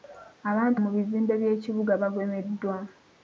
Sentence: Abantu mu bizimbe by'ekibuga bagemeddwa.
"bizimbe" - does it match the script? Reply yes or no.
yes